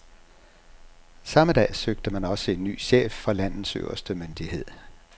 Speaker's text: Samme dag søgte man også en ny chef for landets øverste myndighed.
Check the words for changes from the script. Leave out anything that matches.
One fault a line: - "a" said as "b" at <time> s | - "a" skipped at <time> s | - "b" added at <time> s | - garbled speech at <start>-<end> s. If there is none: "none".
none